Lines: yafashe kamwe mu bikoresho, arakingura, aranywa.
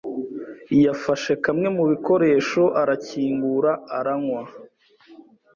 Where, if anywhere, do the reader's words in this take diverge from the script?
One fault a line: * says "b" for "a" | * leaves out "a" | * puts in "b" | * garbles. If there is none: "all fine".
all fine